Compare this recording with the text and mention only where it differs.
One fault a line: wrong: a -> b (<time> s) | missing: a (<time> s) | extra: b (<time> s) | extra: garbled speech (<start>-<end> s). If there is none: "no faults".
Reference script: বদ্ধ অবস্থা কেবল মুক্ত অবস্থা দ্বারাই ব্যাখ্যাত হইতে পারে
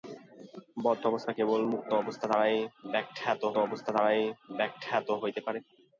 extra: অবস্থা দ্বারাই ব্যাখ্যাত (3.6 s)